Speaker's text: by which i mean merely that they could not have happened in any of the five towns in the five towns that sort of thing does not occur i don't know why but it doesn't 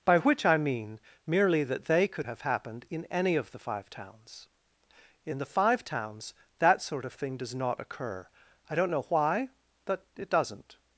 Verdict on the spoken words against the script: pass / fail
fail